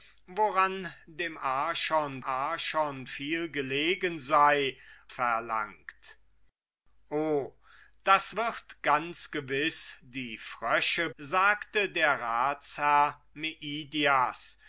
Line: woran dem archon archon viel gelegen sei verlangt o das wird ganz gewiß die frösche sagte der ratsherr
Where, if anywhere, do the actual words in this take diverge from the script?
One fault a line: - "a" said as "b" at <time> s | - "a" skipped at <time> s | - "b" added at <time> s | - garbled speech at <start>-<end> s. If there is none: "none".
none